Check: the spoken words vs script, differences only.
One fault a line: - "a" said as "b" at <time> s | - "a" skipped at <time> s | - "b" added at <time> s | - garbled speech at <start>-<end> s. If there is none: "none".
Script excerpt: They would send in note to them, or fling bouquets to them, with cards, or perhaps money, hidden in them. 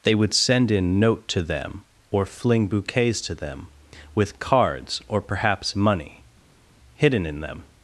none